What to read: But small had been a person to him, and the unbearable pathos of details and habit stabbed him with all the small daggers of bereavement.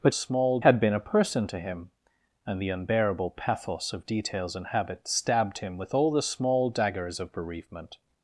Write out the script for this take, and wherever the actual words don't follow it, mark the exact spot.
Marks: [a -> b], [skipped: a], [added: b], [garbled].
But small had been a person to him, and the unbearable pathos of details and habit stabbed him with all the small daggers of bereavement.